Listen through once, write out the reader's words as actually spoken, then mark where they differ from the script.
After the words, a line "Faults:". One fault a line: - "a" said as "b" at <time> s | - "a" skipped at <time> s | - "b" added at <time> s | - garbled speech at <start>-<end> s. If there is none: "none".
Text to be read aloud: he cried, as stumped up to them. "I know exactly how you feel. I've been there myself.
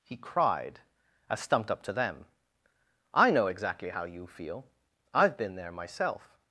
he cried, as stumped up to them. "I know exactly how you feel. I've been there myself.
Faults:
none